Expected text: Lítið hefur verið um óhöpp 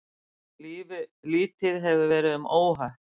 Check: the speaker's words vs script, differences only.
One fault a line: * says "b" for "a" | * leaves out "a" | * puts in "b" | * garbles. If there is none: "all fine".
all fine